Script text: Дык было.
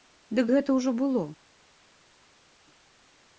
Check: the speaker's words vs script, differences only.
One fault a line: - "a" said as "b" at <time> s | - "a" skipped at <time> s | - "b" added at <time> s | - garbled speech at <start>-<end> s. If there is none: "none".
- "гэта ўжо" added at 0.5 s